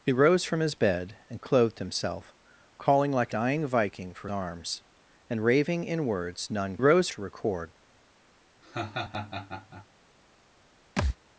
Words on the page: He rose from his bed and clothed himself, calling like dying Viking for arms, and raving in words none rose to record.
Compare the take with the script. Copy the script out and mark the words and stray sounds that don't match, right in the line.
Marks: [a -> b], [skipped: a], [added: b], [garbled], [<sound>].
He rose from his bed and clothed himself, calling like dying Viking for arms, and raving in words none rose to record. [laugh] [thud]